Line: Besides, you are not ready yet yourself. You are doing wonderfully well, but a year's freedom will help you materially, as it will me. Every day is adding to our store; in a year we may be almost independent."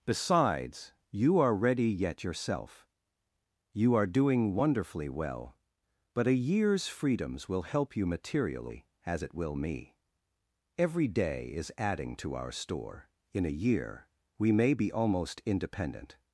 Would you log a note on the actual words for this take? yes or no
yes